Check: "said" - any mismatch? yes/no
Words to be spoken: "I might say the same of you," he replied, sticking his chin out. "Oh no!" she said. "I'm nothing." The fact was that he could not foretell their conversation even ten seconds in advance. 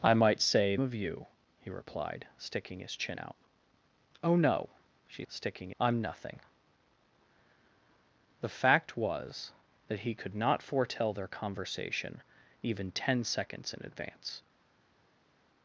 yes